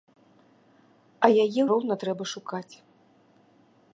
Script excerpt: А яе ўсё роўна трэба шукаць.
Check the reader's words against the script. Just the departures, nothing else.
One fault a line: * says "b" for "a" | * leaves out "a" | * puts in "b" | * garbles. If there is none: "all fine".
* leaves out "ўсё"